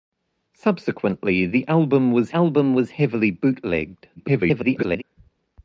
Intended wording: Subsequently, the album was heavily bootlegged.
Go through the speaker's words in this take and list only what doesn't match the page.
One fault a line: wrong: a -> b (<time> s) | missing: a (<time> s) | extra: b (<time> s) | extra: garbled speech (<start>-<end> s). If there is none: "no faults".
extra: album was (2.3 s)
extra: garbled speech (4.2-5.0 s)